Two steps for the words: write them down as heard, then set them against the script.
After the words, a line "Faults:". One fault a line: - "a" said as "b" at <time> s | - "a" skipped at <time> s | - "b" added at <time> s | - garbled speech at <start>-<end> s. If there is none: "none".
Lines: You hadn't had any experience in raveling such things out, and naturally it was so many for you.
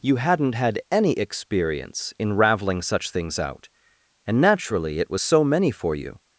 You hadn't had any experience in raveling such things out, and naturally it was so many for you.
Faults:
none